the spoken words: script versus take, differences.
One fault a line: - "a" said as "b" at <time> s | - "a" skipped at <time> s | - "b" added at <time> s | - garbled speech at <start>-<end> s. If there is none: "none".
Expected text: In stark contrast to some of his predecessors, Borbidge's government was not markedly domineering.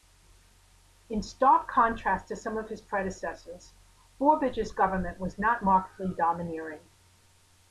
none